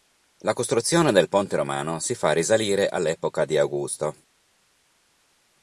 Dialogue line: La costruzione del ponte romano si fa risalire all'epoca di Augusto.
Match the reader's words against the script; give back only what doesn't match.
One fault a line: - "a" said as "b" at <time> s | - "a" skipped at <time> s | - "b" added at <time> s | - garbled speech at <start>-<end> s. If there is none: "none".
none